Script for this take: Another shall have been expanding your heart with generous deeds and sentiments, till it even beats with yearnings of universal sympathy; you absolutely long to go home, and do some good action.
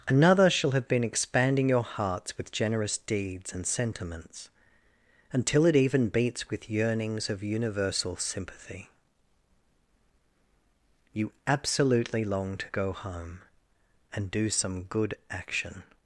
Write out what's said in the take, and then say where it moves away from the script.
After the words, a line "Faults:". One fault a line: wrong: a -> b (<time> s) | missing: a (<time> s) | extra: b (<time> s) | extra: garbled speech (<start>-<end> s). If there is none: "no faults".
Another shall have been expanding your hearts with generous deeds and sentiments, until it even beats with yearnings of universal sympathy; you absolutely long to go home, and do some good action.
Faults:
wrong: heart -> hearts (1.8 s)
wrong: till -> until (5.3 s)